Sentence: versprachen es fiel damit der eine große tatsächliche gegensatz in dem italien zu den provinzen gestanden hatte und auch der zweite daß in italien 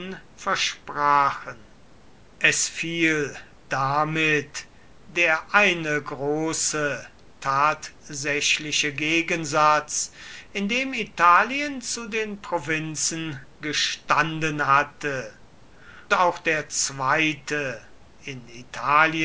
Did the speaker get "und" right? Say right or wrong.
wrong